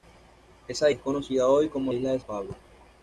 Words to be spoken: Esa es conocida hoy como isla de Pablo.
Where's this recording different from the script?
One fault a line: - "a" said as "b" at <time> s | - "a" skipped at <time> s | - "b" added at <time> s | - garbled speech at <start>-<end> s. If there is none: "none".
none